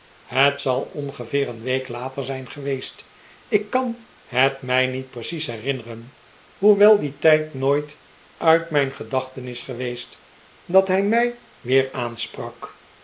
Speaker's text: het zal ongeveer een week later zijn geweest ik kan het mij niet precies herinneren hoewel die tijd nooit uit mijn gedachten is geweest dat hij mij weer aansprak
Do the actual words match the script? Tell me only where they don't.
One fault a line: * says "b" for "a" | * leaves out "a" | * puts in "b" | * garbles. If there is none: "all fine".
all fine